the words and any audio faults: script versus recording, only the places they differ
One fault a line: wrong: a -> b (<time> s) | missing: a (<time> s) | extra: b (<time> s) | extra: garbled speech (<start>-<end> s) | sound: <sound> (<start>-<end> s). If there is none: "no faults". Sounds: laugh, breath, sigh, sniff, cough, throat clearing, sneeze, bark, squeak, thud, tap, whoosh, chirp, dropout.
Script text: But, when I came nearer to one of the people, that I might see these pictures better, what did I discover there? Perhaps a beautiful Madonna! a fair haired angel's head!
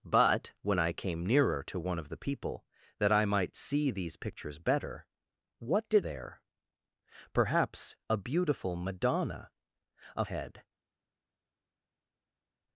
missing: I discover (6.0 s)
missing: fair haired angel's (10.2 s)